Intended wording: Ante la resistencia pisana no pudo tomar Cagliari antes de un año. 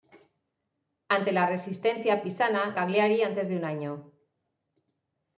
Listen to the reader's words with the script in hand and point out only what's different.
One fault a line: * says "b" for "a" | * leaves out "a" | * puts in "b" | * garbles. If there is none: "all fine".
* leaves out "no pudo tomar"